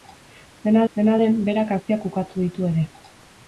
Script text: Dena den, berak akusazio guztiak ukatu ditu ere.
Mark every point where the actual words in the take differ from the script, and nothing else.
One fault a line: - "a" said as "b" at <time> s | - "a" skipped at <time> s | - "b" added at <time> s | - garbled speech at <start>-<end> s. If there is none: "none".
- "dena" added at 0.9 s
- "akusazio" skipped at 1.7 s